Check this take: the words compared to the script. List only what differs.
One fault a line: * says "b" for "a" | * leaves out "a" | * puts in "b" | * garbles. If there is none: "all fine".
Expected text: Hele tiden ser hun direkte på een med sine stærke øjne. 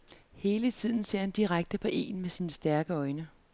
* says "han" for "hun"